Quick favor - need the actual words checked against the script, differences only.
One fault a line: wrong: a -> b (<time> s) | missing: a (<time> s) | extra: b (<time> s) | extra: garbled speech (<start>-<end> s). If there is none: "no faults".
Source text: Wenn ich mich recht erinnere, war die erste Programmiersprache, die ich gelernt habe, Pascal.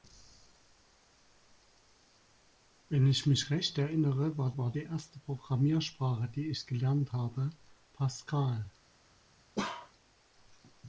extra: war (4.6 s)